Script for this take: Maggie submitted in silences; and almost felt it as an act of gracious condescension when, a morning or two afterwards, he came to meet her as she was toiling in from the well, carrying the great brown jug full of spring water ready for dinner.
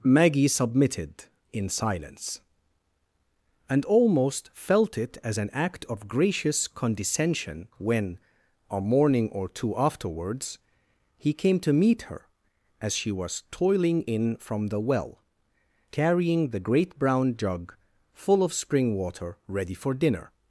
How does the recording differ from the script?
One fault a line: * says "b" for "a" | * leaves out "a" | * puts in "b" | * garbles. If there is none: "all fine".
* says "silence" for "silences"